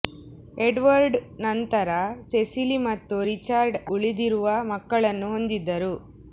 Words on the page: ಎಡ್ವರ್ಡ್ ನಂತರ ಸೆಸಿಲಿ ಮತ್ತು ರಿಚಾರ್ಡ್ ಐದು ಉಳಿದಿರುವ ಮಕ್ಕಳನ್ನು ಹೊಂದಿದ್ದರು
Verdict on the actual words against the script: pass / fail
fail